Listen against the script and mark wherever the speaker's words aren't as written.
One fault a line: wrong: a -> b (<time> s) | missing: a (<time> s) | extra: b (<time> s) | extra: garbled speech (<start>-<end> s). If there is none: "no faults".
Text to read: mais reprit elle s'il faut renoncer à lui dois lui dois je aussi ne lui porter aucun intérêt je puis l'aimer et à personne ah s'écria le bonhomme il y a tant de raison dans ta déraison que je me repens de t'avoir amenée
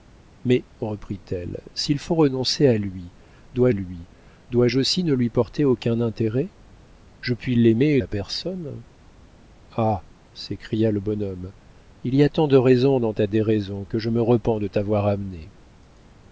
no faults